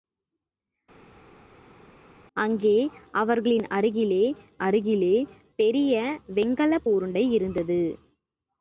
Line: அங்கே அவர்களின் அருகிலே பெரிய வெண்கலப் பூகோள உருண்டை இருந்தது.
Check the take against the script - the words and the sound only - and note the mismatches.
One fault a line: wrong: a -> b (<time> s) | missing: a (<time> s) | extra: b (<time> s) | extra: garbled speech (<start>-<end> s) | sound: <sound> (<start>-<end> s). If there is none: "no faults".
extra: அருகிலே (4.6 s)
missing: பூகோள (6.9 s)